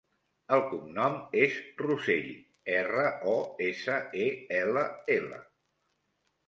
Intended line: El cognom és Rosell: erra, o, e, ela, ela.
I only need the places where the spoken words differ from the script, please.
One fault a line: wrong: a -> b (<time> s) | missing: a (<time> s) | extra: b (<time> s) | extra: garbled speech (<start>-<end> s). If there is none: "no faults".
extra: essa (3.7 s)